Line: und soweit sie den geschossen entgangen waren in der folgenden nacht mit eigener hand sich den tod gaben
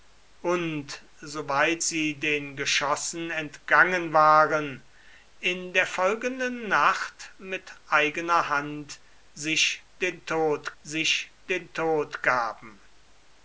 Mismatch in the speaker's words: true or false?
true